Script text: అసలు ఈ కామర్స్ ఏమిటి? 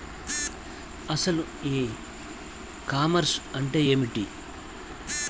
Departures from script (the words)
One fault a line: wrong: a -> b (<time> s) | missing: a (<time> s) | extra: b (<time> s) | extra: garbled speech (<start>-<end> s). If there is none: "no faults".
extra: అంటే (3.5 s)